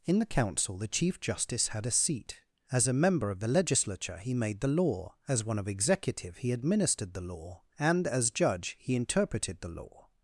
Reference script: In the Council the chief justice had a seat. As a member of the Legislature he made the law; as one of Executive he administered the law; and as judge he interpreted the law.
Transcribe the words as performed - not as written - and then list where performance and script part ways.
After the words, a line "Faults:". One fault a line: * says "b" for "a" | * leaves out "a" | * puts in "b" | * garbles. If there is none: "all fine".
In the Council the chief justice had a seat. As a member of the Legislature he made the law; as one of Executive he administered the law; and as judge he interpreted the law.
Faults:
all fine